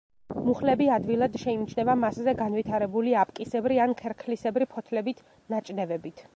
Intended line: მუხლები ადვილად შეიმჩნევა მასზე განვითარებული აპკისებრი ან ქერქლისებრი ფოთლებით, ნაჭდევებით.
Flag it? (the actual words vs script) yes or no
no